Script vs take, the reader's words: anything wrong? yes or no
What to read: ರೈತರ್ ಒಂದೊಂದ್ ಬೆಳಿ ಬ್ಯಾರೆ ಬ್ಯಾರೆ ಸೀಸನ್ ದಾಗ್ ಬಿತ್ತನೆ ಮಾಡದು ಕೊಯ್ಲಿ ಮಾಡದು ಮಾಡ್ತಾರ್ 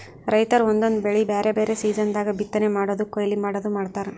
no